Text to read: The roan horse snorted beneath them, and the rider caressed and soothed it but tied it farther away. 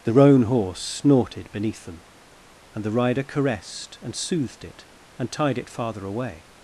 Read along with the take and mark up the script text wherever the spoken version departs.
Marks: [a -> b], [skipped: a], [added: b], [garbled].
The roan horse snorted beneath them, and the rider caressed and soothed it [but -> and] tied it farther away.